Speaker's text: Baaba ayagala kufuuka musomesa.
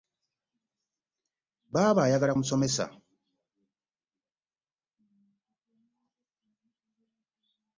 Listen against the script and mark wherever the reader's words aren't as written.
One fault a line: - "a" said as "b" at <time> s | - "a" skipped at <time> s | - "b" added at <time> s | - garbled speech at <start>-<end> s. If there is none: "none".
- "kufuuka" skipped at 2.4 s